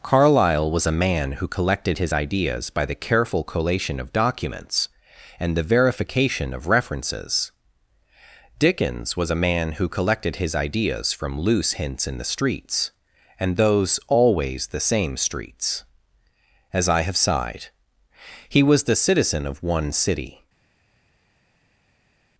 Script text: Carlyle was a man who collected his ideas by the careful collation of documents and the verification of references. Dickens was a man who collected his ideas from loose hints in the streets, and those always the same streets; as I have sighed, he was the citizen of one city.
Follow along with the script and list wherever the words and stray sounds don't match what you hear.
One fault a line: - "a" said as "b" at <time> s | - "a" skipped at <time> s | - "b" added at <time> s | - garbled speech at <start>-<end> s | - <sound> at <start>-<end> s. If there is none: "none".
none